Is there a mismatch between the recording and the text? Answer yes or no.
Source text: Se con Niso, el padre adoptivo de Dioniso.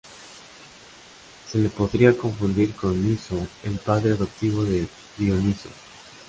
yes